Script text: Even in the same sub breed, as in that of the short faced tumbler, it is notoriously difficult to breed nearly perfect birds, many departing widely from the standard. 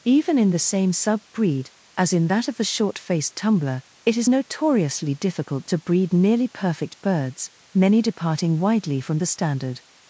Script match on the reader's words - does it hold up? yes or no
yes